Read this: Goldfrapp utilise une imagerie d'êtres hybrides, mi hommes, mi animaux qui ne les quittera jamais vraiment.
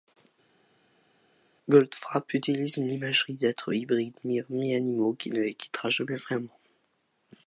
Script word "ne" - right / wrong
right